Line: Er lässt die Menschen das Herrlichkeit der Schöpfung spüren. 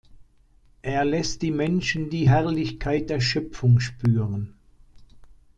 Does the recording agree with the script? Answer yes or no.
no